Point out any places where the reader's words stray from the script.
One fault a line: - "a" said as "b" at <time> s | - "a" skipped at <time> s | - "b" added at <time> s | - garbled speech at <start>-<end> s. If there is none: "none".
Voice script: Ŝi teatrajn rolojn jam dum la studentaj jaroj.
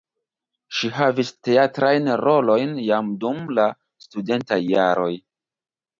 - "havis" added at 1.0 s